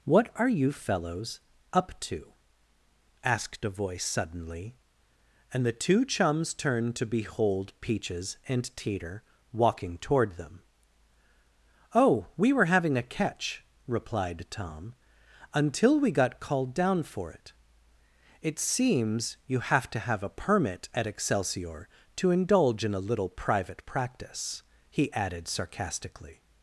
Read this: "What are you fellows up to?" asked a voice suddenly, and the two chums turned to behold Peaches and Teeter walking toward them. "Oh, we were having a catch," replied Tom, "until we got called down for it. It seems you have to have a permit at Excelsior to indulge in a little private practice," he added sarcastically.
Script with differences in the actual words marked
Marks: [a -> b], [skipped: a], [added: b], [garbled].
"What are you fellows up to?" asked a voice suddenly, and the two chums turned to behold Peaches and Teeter walking toward them. "Oh, we were having a catch," replied Tom, "until we got called down for it. It seems you have to have a permit at Excelsior to indulge in a little private practice," he added sarcastically.